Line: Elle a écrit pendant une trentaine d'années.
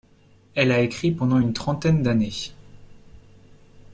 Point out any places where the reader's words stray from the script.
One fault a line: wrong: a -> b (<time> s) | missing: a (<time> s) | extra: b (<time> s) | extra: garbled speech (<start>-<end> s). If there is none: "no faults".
no faults